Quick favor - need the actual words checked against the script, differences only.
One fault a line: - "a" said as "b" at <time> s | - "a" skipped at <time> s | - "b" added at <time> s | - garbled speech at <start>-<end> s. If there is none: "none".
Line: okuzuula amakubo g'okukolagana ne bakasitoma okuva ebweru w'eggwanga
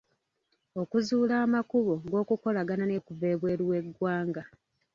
- "bakasitoma" skipped at 3.0 s